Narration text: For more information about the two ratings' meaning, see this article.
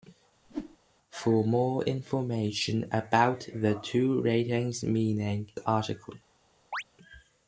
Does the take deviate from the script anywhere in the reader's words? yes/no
yes